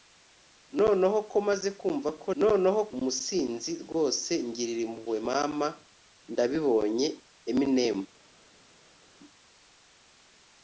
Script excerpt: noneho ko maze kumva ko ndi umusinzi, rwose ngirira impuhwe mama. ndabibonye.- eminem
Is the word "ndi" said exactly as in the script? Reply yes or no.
no